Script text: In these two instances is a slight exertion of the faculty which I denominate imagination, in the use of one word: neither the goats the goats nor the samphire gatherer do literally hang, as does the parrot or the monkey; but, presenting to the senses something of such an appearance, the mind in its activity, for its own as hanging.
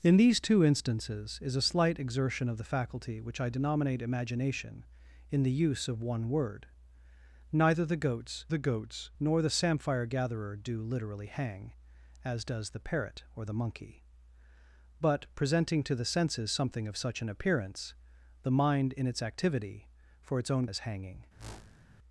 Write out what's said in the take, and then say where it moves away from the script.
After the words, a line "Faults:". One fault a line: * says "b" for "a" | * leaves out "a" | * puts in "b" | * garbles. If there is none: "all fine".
In these two instances is a slight exertion of the faculty which I denominate imagination, in the use of one word: neither the goats the goats nor the samphire gatherer do literally hang, as does the parrot or the monkey; but, presenting to the senses something of such an appearance, the mind in its activity, for its own as hanging.
Faults:
all fine